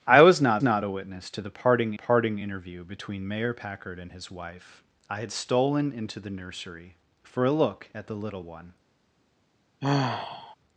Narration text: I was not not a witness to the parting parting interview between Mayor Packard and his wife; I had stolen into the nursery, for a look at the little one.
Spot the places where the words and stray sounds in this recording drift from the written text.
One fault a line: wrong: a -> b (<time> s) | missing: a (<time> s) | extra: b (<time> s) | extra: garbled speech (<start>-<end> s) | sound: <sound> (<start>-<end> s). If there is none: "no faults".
sound: sigh (9.8-10.6 s)